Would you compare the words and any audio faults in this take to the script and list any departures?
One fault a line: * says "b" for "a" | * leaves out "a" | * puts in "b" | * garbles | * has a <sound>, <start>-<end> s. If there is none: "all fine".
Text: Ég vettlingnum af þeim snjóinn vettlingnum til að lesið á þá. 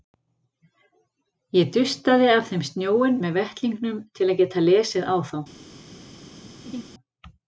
* says "dustaði" for "vettlingnum"
* puts in "með"
* puts in "geta"
* has a laugh, 6.7-6.8 s